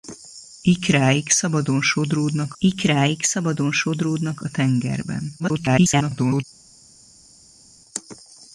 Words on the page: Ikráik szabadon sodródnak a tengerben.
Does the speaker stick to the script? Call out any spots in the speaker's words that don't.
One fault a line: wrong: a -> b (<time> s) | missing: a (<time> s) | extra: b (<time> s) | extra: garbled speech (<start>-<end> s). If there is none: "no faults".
extra: ikráik szabadon sodródnak (2.6 s)
extra: garbled speech (5.4-6.4 s)